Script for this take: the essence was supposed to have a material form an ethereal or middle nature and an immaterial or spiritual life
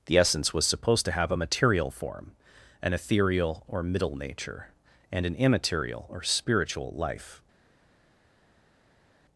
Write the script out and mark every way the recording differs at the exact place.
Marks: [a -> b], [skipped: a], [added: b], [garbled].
the essence was supposed to have a material form an ethereal or middle nature and an immaterial or spiritual life